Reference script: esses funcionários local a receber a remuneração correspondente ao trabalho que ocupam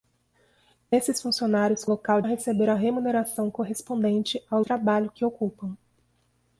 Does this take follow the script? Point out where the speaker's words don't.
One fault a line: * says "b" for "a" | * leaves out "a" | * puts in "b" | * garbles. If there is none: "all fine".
all fine